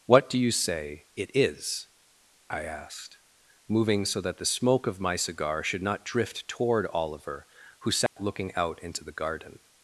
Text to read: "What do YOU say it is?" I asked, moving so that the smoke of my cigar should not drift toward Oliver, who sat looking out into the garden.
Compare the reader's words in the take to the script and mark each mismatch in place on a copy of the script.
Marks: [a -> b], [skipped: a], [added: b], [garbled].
"What do YOU say it is?" I asked, moving so that the smoke of my cigar should not drift toward Oliver, who sat looking out into the garden.